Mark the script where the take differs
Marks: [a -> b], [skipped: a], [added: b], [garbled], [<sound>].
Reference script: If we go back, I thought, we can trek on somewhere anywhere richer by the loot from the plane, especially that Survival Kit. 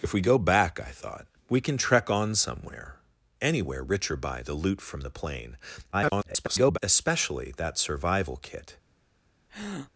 If we go back, I thought, we can trek on somewhere anywhere richer by the loot from the plane, [garbled] especially that Survival Kit. [breath]